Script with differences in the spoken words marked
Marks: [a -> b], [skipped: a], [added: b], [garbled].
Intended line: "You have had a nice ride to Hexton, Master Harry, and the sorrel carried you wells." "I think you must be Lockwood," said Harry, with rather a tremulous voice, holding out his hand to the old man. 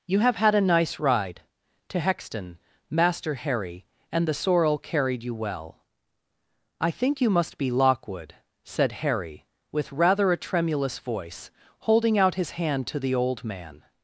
"You have had a nice ride to Hexton, Master Harry, and the sorrel carried you [wells." -> well] "I think you must be Lockwood," said Harry, with rather a tremulous voice, holding out his hand to the old man.